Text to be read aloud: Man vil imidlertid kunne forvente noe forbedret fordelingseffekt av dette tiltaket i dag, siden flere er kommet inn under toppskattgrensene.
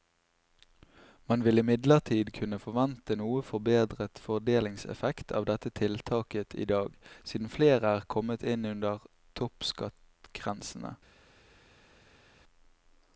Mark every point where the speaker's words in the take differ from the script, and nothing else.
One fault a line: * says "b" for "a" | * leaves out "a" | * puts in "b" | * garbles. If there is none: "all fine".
all fine